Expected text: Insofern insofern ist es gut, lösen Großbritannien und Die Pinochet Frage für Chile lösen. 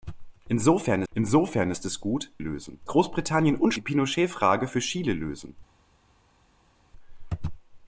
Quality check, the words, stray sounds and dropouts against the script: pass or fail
pass